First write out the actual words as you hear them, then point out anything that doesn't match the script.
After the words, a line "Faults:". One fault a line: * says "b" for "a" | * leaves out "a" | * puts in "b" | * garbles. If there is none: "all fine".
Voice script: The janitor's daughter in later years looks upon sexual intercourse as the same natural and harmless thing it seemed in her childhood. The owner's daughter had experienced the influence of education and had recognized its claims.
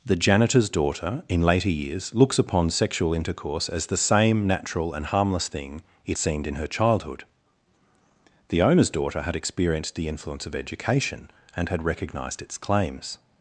The janitor's daughter in later years looks upon sexual intercourse as the same natural and harmless thing it seemed in her childhood. The owner's daughter had experienced the influence of education and had recognized its claims.
Faults:
all fine